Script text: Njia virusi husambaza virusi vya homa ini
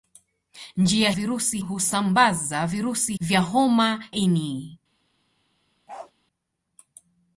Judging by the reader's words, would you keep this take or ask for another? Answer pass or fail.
pass